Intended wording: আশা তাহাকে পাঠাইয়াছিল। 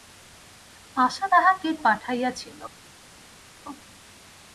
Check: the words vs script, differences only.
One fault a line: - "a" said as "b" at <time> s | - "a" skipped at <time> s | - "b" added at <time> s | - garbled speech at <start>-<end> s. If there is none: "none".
none